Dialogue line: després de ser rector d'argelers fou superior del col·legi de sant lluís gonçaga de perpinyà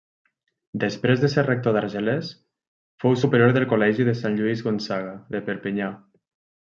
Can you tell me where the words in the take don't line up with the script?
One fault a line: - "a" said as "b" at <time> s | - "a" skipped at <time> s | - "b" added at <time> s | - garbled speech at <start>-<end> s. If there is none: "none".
none